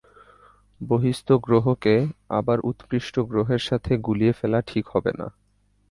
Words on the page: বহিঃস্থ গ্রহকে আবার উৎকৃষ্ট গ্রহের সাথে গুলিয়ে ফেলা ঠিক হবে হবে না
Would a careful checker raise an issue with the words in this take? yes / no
yes